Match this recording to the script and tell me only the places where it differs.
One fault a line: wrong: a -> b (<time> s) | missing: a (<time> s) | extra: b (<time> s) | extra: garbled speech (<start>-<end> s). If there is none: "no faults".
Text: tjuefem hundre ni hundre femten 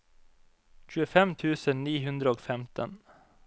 wrong: hundre -> tusen (1.4 s)
extra: og (2.4 s)